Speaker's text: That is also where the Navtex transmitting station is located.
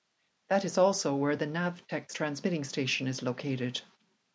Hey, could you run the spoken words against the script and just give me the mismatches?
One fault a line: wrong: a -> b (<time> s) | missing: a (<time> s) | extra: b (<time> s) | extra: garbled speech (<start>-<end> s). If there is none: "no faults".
no faults